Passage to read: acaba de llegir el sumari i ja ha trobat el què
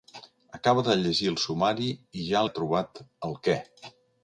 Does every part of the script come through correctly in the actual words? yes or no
yes